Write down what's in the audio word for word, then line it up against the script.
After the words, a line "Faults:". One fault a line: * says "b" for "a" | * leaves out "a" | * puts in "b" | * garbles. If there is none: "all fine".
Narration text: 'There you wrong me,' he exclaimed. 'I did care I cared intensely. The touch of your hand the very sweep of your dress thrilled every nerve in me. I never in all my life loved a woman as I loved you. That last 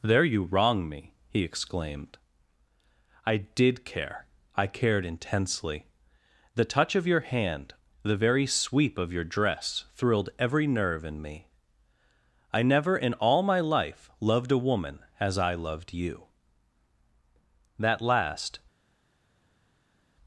'There you wrong me,' he exclaimed. 'I did care I cared intensely. The touch of your hand the very sweep of your dress thrilled every nerve in me. I never in all my life loved a woman as I loved you. That last
Faults:
all fine